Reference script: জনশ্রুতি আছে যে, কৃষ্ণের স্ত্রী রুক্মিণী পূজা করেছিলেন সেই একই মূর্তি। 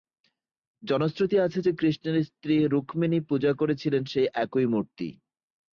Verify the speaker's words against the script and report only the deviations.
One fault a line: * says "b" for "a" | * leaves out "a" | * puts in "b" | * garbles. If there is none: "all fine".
all fine